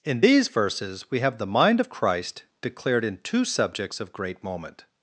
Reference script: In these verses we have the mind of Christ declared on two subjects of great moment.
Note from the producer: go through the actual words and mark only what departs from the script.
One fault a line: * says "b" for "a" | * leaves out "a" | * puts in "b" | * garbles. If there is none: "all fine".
* says "in" for "on"